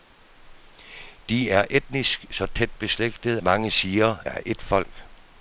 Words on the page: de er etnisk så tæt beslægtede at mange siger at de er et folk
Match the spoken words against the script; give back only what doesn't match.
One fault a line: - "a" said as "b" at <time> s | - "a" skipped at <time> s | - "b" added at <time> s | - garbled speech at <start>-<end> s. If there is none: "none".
- "at" skipped at 3.4 s
- "at de" skipped at 4.2 s